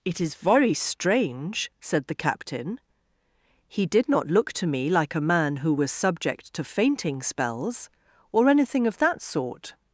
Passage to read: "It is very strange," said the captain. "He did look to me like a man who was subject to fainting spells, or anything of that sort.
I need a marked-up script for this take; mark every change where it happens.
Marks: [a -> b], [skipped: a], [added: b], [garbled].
"It is very strange," said the captain. "He did [added: not] look to me like a man who was subject to fainting spells, or anything of that sort.